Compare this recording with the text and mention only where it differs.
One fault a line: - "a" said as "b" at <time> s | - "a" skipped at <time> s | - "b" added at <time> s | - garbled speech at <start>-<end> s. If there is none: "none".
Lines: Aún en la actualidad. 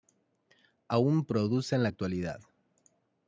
- "produce" added at 1.2 s